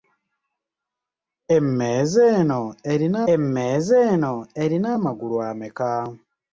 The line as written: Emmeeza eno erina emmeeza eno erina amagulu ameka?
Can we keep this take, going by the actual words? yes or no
yes